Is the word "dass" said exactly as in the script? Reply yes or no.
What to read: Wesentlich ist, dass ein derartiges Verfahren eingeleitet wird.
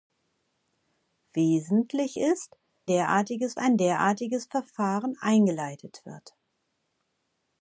no